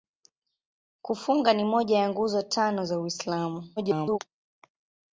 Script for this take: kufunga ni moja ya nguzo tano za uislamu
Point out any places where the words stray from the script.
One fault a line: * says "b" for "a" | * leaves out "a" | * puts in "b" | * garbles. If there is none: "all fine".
* garbles